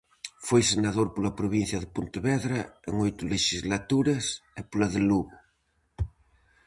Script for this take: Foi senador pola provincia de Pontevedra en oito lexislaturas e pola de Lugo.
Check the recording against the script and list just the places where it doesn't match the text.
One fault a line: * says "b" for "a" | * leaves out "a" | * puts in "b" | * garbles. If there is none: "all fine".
all fine